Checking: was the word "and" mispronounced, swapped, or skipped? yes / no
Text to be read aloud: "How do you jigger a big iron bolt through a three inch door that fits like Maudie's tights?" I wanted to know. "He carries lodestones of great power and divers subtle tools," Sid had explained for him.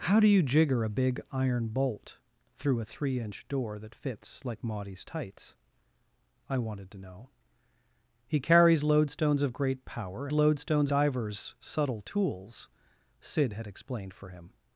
yes